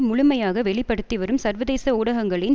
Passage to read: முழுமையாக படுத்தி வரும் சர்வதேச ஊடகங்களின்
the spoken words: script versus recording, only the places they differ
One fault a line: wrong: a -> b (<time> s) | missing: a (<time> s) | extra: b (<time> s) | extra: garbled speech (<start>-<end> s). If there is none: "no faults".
extra: வெளி (0.6 s)